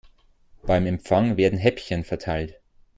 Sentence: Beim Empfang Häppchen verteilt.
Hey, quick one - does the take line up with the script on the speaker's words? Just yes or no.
no